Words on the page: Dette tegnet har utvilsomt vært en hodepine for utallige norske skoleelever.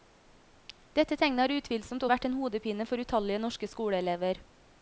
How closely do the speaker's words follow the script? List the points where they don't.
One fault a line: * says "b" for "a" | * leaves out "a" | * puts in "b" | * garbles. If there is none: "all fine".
all fine